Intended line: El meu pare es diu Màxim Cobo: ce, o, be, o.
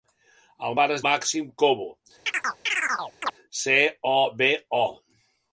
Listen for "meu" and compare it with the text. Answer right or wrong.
wrong